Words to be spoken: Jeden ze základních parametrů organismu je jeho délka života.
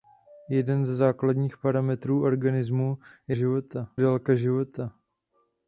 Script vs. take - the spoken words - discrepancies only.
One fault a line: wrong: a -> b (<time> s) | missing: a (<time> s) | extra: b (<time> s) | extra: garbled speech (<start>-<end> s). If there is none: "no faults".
wrong: jeho -> života (3.3 s)